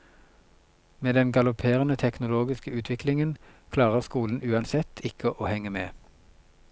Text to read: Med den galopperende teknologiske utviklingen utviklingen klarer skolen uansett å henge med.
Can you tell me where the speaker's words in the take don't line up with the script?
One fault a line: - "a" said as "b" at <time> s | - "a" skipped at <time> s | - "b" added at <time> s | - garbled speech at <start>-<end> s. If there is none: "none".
- "utviklingen" skipped at 3.4 s
- "ikke" added at 5.0 s